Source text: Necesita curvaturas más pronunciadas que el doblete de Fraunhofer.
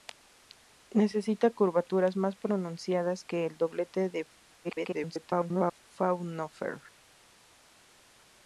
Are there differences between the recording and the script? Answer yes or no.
yes